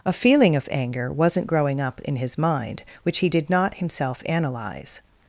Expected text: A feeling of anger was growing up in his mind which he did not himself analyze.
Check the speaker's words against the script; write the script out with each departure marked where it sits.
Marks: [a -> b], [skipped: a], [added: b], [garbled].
A feeling of anger [was -> wasn't] growing up in his mind which he did not himself analyze.